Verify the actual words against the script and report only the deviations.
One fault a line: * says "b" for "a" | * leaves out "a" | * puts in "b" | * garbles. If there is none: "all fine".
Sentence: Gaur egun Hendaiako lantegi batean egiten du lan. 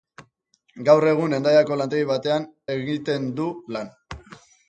all fine